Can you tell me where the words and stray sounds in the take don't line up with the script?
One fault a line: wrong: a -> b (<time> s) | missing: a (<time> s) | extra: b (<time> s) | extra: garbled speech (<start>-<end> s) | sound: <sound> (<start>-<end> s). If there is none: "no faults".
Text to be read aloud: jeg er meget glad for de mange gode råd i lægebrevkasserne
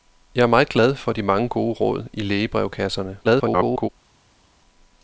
extra: garbled speech (3.2-3.9 s)